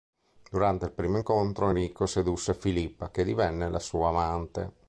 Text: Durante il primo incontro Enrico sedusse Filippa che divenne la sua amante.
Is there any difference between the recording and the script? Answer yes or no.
no